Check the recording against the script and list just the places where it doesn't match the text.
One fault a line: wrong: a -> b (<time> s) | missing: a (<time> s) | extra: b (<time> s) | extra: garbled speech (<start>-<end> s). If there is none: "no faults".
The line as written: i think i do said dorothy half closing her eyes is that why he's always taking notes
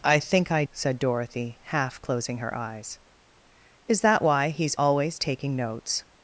missing: do (0.6 s)